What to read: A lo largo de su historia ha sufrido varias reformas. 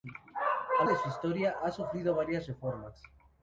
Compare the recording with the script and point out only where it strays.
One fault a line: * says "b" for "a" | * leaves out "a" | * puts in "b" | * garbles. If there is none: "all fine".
* leaves out "lo largo"